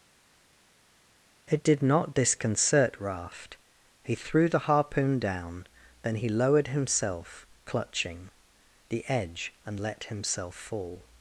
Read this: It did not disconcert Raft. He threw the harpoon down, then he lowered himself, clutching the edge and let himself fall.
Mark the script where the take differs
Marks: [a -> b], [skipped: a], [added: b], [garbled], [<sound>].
It did not disconcert Raft. He threw the harpoon down, then he lowered himself, clutching the edge and let himself fall.